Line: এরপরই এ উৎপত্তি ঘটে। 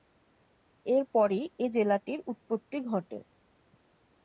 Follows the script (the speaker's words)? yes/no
no